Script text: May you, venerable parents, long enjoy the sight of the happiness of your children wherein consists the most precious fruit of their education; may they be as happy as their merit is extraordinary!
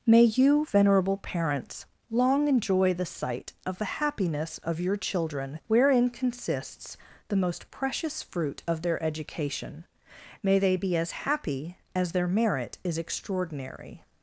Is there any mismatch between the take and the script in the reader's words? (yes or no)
no